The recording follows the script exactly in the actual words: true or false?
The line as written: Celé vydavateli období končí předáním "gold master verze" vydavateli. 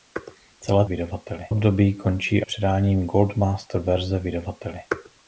true